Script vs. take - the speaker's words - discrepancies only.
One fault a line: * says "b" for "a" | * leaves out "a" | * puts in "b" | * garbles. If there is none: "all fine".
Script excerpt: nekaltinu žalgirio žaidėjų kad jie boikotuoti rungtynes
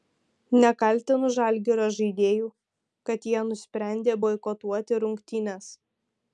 * puts in "nusprendė"